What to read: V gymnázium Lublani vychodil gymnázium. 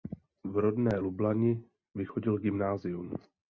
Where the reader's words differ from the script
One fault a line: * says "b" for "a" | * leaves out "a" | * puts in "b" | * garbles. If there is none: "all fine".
* says "rodné" for "gymnázium"